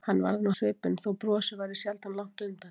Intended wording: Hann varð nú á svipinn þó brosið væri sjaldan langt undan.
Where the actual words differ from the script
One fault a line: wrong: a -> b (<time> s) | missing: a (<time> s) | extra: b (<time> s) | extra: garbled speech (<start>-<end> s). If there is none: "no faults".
no faults